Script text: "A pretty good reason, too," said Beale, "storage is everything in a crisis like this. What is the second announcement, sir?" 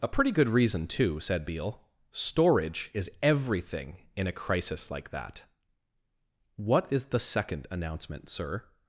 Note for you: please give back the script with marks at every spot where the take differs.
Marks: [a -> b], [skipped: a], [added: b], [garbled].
"A pretty good reason, too," said Beale, "storage is everything in a crisis like [this. -> that] What is the second announcement, sir?"